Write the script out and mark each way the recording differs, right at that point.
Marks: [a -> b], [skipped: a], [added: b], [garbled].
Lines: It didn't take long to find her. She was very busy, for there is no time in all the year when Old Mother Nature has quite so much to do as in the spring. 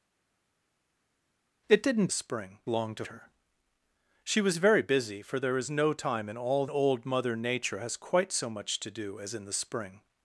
It didn't [take -> spring] long to [skipped: find] her. She was very busy, for there is no time in all [skipped: the year when] Old Mother Nature has quite so much to do as in the spring.